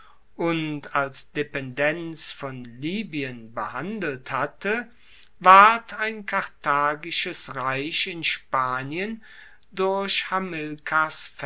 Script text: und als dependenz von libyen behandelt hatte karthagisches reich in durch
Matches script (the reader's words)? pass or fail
fail